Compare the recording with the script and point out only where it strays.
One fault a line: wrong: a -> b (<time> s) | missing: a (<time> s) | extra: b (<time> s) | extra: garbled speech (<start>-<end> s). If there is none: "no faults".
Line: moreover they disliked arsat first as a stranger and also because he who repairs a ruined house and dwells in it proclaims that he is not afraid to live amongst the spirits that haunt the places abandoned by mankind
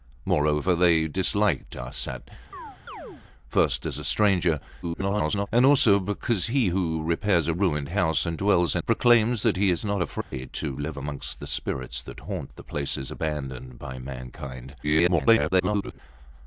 extra: garbled speech (4.8-5.5 s)
missing: it (8.8 s)
extra: garbled speech (14.8-16.0 s)